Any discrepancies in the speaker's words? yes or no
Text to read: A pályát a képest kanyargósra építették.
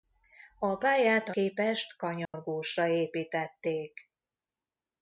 no